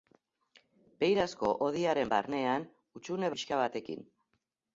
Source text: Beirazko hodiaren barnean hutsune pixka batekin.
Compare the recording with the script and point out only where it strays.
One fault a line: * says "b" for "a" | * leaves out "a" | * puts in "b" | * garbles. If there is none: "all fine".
all fine